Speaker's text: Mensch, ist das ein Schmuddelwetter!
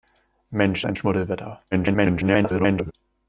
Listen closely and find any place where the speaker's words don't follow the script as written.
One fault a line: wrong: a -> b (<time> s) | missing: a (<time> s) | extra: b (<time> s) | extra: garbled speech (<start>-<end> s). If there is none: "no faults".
missing: ist das (0.8 s)
extra: garbled speech (1.7-2.9 s)